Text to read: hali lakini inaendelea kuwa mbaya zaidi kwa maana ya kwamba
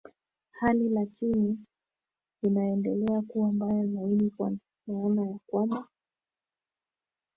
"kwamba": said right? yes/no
yes